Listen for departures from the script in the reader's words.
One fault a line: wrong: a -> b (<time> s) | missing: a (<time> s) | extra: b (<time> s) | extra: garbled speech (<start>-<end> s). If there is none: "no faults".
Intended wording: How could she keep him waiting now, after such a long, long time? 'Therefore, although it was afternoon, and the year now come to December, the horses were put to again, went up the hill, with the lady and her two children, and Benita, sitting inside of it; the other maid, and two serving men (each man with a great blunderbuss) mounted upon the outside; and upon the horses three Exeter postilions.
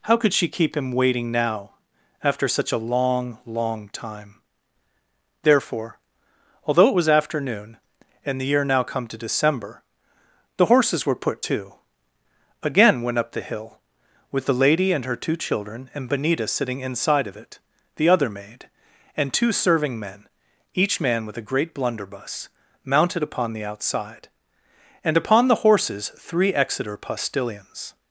no faults